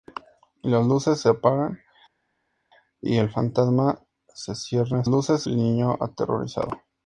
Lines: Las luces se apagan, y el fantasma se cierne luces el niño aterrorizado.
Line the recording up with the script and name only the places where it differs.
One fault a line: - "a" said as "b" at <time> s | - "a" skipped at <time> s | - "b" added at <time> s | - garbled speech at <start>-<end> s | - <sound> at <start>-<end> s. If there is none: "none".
none